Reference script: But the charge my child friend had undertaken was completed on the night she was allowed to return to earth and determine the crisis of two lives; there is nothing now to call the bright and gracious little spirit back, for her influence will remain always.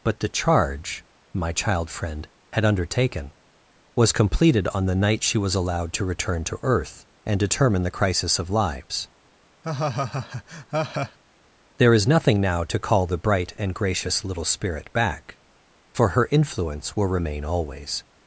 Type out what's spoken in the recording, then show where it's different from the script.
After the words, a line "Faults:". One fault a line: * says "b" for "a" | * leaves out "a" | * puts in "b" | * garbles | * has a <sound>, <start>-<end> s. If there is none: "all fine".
But the charge my child friend had undertaken was completed on the night she was allowed to return to earth and determine the crisis of lives; there is nothing now to call the bright and gracious little spirit back, for her influence will remain always.
Faults:
* leaves out "two"
* has a laugh, 9.6-11.2 s